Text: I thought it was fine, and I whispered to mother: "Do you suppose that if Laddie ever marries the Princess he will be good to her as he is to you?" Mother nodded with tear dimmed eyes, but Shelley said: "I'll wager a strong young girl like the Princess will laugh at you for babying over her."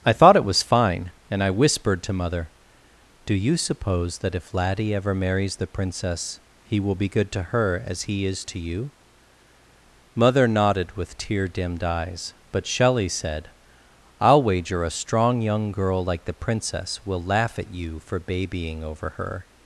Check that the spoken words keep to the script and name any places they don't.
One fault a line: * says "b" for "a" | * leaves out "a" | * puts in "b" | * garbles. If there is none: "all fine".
all fine